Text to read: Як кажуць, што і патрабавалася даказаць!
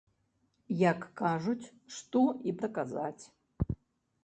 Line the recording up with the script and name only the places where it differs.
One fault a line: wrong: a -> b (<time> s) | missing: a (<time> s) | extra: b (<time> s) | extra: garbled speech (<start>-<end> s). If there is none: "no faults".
missing: патрабавалася (2.6 s)